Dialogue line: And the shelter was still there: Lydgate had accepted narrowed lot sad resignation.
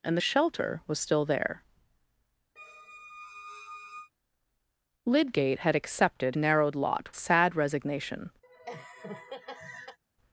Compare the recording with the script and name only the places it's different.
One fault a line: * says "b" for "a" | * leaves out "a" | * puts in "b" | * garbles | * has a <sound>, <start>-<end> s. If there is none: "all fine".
* has a squeak, 2.6-4.1 s
* has a laugh, 8.4-10.0 s